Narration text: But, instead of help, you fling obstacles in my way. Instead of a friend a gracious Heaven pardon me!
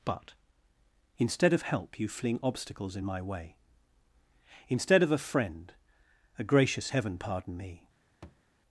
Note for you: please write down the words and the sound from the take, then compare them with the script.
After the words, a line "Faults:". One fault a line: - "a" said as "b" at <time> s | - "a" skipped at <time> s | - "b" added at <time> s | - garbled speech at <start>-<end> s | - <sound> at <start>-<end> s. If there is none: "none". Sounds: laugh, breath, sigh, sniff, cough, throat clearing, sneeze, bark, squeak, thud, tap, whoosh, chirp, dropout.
But, instead of help, you fling obstacles in my way. Instead of a friend a gracious Heaven pardon me!
Faults:
- thud at 8.2-8.4 s